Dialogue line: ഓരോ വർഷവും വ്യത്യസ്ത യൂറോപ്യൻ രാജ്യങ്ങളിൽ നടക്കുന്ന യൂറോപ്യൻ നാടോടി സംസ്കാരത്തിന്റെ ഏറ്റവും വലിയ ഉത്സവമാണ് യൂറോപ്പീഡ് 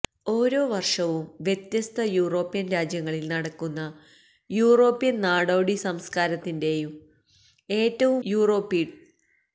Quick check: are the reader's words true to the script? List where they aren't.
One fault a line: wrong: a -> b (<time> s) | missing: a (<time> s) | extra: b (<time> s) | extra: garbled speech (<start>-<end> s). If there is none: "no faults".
missing: വലിയ ഉത്സവമാണ് (8.2 s)